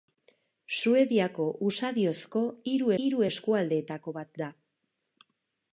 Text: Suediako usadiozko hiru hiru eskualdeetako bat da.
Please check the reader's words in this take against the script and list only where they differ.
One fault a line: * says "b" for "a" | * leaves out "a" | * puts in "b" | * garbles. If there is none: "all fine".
all fine